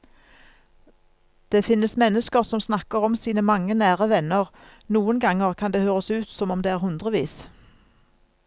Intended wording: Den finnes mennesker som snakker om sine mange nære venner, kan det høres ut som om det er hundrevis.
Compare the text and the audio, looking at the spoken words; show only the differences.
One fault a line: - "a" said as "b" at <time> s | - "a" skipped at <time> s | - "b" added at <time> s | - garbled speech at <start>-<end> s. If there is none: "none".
- "Den" said as "Det" at 1.5 s
- "noen ganger" added at 5.0 s